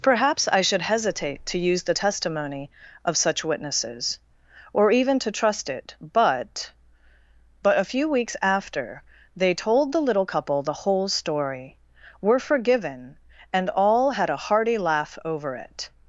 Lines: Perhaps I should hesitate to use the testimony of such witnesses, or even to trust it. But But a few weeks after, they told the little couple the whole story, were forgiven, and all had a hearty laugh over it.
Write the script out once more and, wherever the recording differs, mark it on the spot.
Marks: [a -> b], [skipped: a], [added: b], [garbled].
Perhaps I should hesitate to use the testimony of such witnesses, or even to trust it. But But a few weeks after, they told the little couple the whole story, were forgiven, and all had a hearty laugh over it.